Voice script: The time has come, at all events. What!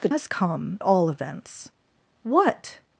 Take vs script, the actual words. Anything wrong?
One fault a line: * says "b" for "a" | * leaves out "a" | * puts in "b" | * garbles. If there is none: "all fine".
* leaves out "time"
* leaves out "at"